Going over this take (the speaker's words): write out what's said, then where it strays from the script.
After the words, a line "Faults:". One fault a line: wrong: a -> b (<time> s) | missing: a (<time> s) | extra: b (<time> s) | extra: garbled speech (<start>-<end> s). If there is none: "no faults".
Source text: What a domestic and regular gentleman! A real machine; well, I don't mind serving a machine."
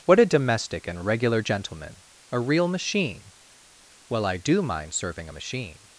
What a domestic and regular gentleman! A real machine; well, I do mind serving a machine."
Faults:
wrong: don't -> do (4.4 s)